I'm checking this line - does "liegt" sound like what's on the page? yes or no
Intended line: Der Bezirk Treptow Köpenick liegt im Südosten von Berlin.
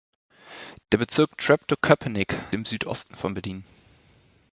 no